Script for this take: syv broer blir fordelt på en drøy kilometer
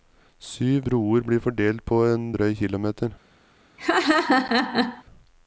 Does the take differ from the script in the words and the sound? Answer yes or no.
yes